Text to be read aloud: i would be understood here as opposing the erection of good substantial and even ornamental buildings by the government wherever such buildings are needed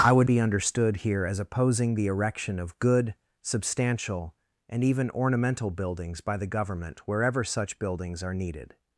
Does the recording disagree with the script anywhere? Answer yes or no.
no